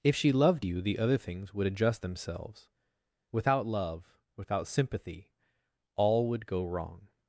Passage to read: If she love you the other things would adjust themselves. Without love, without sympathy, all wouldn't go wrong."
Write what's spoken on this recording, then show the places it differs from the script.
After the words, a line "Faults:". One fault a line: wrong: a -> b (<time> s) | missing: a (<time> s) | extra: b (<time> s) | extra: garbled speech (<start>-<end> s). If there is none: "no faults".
If she loved you the other things would adjust themselves. Without love, without sympathy, all would go wrong."
Faults:
wrong: love -> loved (0.3 s)
wrong: wouldn't -> would (6.3 s)